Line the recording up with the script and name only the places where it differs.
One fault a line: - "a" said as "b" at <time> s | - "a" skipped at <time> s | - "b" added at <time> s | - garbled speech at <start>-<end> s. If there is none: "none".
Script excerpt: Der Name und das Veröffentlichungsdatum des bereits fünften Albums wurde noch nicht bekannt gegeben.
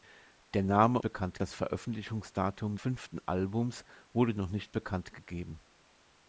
- "und" said as "bekannt" at 1.0 s
- "des bereits" skipped at 2.8 s